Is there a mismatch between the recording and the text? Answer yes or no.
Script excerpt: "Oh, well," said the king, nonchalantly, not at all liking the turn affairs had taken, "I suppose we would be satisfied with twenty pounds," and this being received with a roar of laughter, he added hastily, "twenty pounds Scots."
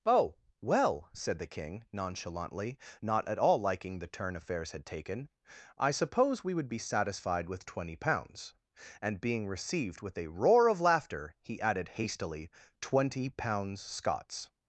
yes